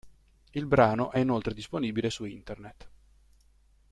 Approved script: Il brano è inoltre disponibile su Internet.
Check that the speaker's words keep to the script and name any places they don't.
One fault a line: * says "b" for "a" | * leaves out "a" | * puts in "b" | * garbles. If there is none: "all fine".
all fine